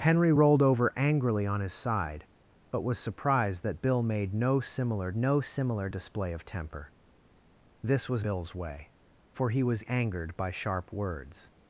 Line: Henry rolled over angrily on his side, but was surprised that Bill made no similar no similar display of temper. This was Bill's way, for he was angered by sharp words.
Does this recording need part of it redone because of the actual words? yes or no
no